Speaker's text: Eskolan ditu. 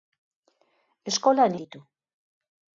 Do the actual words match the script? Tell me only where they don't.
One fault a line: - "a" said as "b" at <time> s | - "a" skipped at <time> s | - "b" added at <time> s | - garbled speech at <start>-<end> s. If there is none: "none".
none